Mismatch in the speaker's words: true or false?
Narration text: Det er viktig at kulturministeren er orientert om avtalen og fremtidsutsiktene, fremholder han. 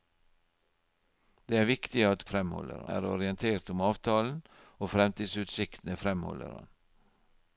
true